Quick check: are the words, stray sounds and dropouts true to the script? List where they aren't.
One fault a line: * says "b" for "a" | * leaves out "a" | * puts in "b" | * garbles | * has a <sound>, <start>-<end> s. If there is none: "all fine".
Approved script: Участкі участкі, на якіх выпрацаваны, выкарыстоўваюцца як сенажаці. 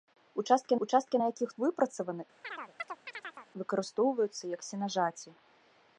* has a chirp, 2.4-3.5 s